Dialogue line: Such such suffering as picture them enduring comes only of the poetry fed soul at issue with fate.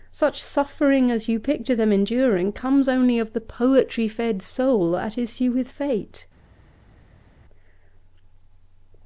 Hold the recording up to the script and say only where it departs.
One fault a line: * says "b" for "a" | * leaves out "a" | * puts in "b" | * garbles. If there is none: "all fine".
* leaves out "such"
* puts in "you"